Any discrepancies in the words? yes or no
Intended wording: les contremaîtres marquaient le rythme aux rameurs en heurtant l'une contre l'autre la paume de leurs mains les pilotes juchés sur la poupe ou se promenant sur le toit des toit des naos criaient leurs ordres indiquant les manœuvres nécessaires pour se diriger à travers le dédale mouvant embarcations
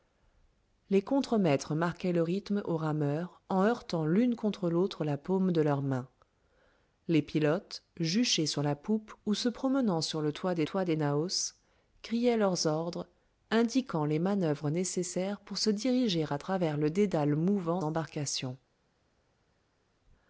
no